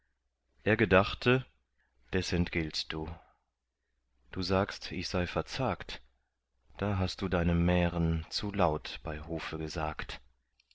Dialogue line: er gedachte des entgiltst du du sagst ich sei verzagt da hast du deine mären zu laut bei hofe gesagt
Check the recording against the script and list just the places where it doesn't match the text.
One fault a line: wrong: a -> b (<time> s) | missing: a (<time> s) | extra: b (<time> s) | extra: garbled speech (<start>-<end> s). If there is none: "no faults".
no faults